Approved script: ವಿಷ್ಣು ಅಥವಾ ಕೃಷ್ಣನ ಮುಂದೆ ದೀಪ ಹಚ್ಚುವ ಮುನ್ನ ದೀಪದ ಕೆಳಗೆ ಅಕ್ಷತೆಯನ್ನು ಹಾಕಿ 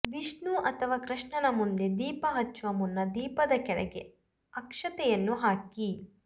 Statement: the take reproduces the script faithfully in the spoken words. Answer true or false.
true